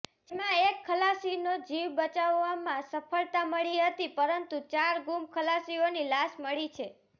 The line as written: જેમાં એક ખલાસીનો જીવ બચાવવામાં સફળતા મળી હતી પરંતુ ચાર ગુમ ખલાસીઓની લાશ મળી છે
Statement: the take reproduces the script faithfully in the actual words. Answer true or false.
true